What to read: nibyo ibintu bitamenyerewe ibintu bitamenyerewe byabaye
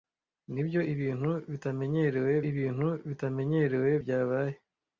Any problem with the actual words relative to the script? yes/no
no